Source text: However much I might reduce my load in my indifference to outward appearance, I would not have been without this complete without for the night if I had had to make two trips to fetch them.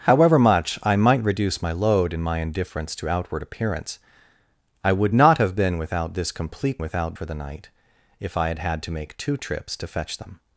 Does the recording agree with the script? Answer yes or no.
yes